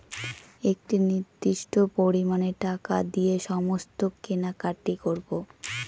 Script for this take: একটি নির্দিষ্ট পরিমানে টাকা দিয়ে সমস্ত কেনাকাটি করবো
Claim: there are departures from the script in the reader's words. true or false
false